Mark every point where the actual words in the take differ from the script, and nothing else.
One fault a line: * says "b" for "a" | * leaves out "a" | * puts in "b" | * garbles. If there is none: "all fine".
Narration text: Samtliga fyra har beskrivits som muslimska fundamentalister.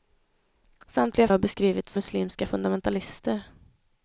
* leaves out "fyra"
* leaves out "som"